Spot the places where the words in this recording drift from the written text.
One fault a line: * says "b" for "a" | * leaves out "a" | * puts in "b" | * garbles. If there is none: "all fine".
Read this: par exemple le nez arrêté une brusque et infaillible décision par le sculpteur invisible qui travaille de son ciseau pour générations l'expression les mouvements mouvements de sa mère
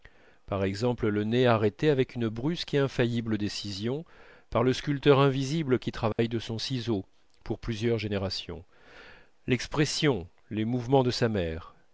* puts in "avec"
* puts in "plusieurs"
* leaves out "mouvements"